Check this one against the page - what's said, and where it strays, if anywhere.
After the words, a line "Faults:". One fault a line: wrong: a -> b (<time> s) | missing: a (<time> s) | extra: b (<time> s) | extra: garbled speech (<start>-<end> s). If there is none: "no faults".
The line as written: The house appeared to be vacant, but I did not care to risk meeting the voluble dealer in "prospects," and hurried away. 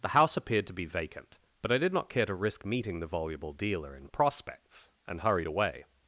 The house appeared to be vacant, but I did not care to risk meeting the voluble dealer in "prospects," and hurried away.
Faults:
no faults